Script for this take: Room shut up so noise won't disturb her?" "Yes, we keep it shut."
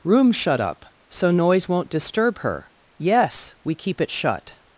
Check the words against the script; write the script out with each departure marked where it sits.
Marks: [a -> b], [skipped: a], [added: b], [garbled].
Room shut up so noise won't disturb her?" "Yes, we keep it shut."